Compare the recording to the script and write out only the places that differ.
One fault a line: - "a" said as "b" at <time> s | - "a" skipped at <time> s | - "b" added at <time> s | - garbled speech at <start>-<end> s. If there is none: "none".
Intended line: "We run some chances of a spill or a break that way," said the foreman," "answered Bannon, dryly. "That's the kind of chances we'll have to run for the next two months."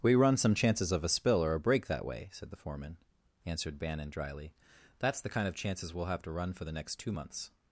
none